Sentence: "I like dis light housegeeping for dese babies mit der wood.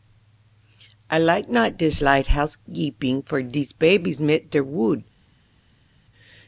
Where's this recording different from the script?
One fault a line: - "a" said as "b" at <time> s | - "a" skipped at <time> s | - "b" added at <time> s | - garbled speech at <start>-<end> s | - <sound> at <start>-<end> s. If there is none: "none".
- "not" added at 1.5 s